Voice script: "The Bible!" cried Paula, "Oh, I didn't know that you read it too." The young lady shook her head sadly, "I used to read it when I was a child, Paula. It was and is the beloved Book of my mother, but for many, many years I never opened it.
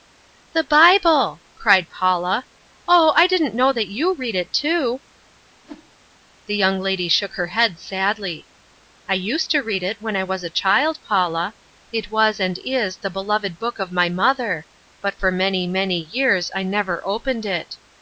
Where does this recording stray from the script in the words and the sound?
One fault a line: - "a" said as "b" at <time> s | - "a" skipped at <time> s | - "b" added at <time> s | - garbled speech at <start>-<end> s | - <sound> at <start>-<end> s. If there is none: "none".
- whoosh at 5.6-5.9 s